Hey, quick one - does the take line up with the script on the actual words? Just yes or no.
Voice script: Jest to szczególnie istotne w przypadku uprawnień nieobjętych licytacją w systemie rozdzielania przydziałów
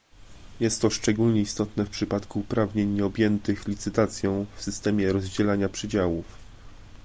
yes